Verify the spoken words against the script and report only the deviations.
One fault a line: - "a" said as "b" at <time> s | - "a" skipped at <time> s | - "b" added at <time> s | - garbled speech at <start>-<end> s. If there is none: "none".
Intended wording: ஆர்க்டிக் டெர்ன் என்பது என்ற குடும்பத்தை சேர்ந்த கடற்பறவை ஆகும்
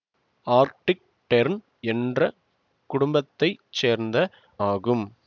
- "என்பது" skipped at 1.6 s
- "கடற்பறவை" skipped at 4.3 s